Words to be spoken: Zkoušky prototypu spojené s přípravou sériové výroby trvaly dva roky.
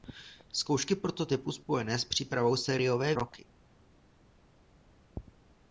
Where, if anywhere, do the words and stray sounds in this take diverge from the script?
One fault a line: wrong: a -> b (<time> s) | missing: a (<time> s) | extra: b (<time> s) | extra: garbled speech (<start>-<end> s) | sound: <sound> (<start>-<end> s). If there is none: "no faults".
missing: výroby trvaly dva (3.1 s)